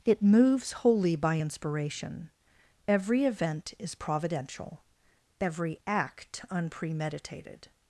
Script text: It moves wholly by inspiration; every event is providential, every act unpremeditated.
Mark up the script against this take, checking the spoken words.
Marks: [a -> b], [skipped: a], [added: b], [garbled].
It moves wholly by inspiration; every event is providential, every act unpremeditated.